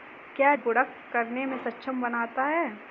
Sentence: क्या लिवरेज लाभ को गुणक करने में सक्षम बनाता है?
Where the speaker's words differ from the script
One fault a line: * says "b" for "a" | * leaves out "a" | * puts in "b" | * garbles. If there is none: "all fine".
* leaves out "लिवरेज लाभ को"